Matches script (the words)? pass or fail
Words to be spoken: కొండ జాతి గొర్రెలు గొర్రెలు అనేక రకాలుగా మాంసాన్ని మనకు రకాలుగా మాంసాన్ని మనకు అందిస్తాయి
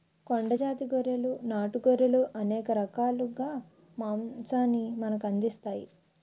fail